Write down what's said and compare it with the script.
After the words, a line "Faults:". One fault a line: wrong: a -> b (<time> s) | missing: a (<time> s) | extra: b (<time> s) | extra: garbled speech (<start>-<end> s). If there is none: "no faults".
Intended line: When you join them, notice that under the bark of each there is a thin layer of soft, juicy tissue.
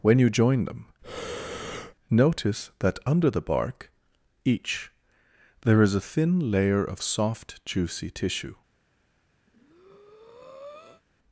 When you join them, notice that under the bark each there is a thin layer of soft, juicy tissue.
Faults:
missing: of (3.9 s)